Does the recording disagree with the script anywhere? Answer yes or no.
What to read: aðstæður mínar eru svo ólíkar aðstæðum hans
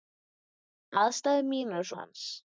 yes